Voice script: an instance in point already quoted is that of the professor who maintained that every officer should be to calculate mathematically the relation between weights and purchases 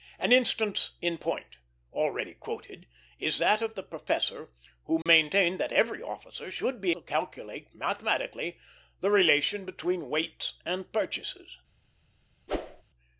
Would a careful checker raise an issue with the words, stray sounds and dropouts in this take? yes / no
yes